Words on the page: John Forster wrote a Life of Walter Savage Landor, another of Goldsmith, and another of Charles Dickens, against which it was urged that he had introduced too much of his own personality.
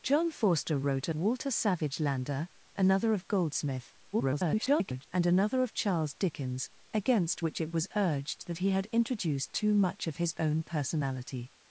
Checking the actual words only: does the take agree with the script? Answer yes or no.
no